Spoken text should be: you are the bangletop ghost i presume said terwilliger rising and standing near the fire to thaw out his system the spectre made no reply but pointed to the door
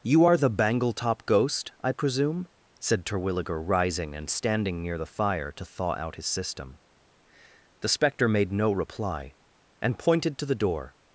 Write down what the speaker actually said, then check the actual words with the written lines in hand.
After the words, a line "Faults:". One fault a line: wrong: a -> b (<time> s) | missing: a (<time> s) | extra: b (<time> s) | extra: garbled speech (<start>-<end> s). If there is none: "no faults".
you are the bangletop ghost i presume said terwilliger rising and standing near the fire to thaw out his system the spectre made no reply and pointed to the door
Faults:
wrong: but -> and (9.8 s)